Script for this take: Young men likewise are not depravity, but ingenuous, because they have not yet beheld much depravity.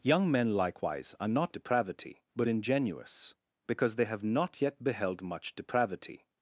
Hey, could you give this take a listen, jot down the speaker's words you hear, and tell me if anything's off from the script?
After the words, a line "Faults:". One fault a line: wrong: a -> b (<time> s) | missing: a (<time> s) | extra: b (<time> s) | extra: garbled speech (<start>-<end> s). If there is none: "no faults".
Young men likewise are not depravity, but ingenuous, because they have not yet beheld much depravity.
Faults:
no faults